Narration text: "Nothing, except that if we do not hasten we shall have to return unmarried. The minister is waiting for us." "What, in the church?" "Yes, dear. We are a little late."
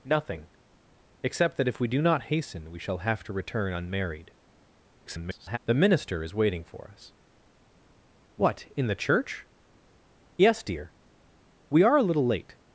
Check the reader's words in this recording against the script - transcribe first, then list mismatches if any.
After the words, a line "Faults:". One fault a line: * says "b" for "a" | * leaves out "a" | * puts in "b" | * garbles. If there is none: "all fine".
"Nothing, except that if we do not hasten we shall have to return unmarried. [garbled] The minister is waiting for us." "What, in the church?" "Yes, dear. We are a little late."
Faults:
* garbles